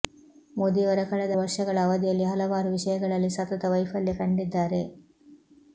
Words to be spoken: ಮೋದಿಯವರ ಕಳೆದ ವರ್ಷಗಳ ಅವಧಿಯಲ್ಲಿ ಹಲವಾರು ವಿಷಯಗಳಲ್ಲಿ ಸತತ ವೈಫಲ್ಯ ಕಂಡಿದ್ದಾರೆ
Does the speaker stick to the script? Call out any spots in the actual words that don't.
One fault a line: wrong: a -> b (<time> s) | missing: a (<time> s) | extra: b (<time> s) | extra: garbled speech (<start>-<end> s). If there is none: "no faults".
no faults